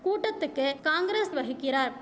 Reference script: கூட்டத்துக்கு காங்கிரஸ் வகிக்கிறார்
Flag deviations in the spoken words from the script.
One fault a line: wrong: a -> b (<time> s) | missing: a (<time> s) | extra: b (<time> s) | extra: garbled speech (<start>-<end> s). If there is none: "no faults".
no faults